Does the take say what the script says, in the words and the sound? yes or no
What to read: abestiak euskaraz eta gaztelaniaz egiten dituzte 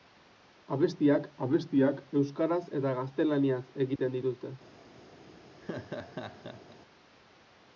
no